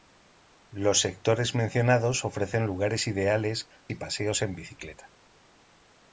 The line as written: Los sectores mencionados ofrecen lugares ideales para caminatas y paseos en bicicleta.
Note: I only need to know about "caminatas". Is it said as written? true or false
false